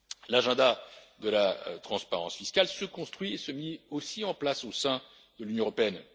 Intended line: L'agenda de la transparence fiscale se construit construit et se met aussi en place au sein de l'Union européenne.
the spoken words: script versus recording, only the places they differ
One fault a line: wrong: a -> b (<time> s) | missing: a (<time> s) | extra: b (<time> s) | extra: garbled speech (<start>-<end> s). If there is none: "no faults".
missing: construit (3.3 s)